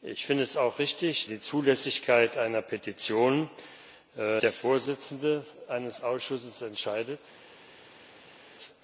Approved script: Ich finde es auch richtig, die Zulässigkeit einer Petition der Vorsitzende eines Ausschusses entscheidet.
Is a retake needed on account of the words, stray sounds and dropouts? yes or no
no